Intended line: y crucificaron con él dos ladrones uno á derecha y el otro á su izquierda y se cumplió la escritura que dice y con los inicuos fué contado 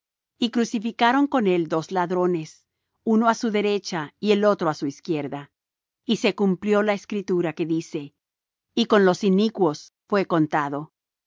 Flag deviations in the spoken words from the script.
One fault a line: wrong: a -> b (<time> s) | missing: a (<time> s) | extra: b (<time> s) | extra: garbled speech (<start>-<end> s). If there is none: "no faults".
extra: su (3.4 s)